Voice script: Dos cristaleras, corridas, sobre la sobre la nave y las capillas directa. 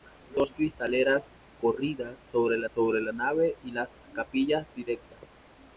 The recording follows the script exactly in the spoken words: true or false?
true